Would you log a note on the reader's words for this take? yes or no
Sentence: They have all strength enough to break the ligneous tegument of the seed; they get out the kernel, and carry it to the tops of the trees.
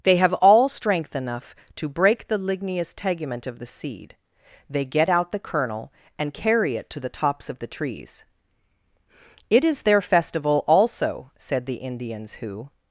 yes